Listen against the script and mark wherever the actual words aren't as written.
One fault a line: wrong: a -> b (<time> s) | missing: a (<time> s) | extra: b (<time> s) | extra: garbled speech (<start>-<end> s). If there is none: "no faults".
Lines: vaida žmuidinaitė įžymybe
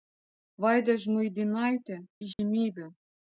no faults